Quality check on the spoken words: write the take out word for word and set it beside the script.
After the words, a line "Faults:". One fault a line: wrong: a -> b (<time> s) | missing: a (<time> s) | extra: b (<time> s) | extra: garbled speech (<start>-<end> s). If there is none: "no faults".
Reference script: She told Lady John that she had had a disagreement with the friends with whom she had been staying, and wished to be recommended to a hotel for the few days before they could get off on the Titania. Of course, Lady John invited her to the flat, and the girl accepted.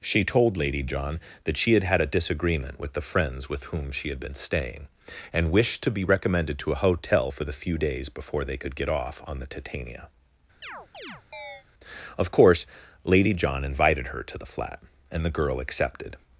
She told Lady John that she had had a disagreement with the friends with whom she had been staying, and wished to be recommended to a hotel for the few days before they could get off on the Titania. Of course, Lady John invited her to the flat, and the girl accepted.
Faults:
no faults